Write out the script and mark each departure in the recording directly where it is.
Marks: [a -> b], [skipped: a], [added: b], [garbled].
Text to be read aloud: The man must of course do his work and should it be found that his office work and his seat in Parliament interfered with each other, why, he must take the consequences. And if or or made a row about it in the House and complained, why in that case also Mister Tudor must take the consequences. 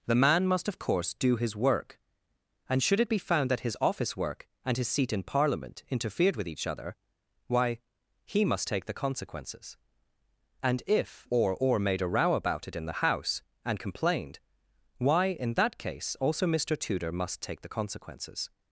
The man must of course do his work and should it be found that his office work and his seat in Parliament interfered with each other, why, he must take the consequences. And if or or made a row about it in the House and complained, why in that case also Mister Tudor must take the consequences.